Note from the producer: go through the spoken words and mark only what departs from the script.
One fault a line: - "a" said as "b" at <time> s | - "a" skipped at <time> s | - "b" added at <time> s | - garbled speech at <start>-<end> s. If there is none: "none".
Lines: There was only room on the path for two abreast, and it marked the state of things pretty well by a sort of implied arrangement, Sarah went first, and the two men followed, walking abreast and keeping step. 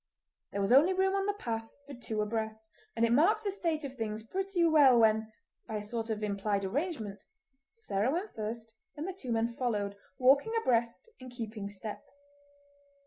- "when" added at 5.0 s